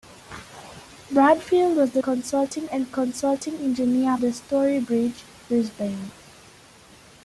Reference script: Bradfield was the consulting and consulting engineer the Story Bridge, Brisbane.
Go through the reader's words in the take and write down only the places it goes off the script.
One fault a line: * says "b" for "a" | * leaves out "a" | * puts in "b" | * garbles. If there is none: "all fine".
all fine